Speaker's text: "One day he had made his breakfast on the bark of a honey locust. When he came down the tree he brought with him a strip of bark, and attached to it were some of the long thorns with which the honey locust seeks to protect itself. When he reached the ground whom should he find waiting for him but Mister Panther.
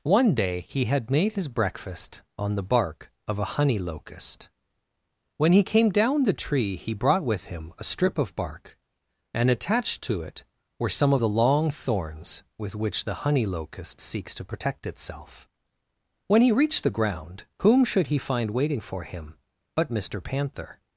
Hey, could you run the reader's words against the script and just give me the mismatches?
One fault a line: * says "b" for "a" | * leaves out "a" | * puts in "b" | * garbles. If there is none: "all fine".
all fine